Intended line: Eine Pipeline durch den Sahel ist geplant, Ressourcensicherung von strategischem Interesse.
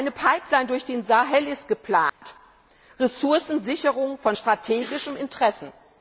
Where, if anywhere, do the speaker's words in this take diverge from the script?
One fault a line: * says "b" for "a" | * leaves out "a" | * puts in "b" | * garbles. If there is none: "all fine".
all fine